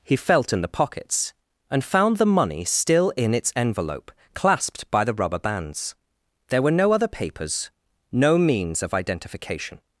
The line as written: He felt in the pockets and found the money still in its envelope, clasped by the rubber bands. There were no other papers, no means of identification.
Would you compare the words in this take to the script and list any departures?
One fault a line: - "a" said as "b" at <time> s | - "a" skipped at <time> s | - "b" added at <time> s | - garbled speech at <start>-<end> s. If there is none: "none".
none